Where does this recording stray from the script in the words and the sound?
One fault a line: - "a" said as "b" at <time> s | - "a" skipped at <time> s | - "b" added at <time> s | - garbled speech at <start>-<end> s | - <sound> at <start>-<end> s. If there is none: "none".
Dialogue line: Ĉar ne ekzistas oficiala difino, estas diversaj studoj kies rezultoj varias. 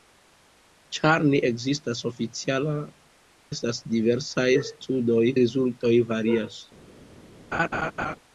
- "difino" skipped at 2.7 s
- "kies" skipped at 5.3 s
- laugh at 7.5-8.2 s